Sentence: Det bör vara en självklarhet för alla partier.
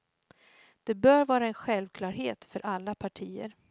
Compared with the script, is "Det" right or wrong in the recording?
right